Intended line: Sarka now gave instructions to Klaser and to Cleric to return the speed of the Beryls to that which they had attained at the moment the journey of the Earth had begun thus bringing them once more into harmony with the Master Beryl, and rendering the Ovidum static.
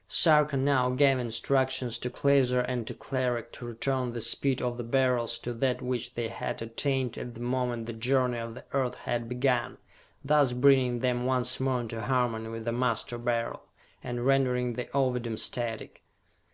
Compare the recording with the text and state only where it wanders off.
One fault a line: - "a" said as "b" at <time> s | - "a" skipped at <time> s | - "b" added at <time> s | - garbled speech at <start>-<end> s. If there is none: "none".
none